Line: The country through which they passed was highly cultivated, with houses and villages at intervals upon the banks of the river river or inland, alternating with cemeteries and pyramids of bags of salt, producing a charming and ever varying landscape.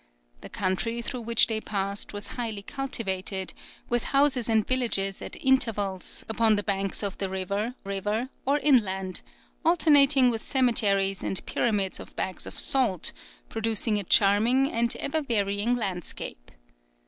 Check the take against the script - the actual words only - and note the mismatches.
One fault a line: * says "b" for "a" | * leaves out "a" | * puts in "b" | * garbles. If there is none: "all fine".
all fine